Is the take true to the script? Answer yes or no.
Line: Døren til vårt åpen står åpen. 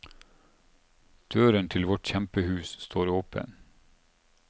no